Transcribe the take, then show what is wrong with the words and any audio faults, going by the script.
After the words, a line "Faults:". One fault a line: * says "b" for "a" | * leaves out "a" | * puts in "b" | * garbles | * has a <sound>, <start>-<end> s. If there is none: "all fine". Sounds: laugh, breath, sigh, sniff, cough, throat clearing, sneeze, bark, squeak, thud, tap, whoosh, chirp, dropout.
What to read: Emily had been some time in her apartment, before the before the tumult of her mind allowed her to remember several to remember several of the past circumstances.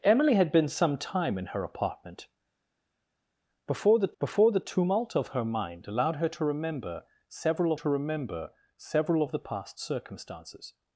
Emily had been some time in her apartment, before the before the tumult of her mind allowed her to remember several to remember several of the past circumstances.
Faults:
all fine